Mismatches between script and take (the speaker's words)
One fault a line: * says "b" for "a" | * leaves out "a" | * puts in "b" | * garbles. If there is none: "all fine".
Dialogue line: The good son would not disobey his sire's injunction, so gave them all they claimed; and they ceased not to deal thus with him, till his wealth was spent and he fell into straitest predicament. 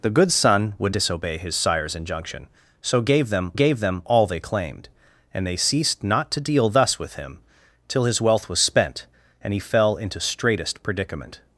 * leaves out "not"
* puts in "gave them"